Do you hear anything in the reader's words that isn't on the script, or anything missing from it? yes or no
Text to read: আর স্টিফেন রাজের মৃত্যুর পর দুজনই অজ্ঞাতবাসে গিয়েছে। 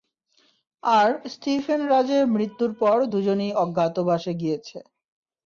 no